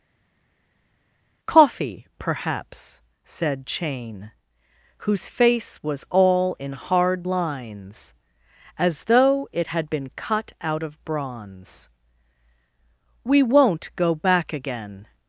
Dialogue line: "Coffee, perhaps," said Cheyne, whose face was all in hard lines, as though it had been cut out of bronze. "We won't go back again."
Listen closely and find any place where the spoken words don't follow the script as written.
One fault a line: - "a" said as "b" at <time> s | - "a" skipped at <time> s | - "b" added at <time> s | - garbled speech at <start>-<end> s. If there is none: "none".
none